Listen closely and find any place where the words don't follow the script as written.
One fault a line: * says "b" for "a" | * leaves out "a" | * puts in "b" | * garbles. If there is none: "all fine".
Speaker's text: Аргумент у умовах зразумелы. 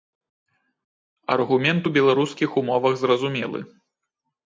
* puts in "беларускіх"